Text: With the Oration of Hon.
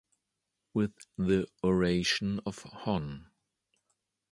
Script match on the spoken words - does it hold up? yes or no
yes